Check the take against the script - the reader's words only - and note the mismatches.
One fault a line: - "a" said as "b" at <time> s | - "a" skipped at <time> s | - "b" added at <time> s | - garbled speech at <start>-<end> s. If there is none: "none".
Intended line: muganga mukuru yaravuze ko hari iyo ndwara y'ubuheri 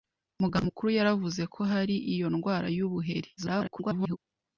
- garbled speech at 3.4-4.2 s